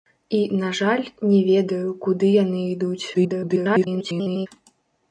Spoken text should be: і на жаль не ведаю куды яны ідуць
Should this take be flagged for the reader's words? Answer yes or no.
yes